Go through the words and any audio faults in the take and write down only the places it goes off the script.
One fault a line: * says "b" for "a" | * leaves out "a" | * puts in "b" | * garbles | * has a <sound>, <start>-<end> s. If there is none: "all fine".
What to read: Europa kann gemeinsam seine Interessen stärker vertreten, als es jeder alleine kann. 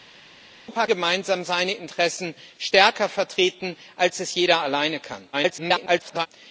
* leaves out "kann"
* garbles